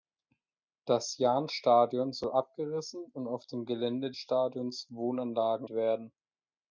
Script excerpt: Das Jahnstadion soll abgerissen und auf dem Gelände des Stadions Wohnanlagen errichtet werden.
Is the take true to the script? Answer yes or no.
no